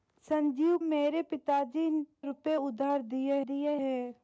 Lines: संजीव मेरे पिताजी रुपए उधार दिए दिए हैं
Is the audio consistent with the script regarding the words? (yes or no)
yes